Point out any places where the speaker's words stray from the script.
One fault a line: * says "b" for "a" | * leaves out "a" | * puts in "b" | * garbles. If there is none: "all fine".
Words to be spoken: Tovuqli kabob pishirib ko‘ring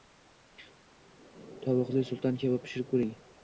* puts in "sulton"